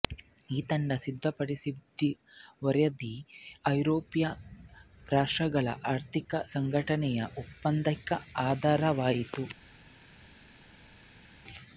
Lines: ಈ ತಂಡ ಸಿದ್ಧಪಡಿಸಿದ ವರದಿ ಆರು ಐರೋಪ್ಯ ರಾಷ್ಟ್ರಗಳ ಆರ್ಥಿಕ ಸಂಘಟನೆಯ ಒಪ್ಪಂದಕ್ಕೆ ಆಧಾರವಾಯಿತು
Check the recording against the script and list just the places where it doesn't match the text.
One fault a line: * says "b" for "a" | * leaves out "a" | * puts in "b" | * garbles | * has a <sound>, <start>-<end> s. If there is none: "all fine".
* leaves out "ಆರು"